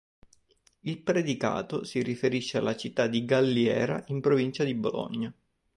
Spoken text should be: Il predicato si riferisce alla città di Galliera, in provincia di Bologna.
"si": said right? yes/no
yes